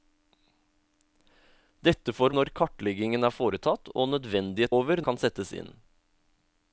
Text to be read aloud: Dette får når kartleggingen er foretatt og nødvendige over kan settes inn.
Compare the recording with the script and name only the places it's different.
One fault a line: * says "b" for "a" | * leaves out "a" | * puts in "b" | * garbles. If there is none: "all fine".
all fine